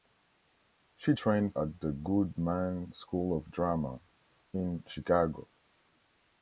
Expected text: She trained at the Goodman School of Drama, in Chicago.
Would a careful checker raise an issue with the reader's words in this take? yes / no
no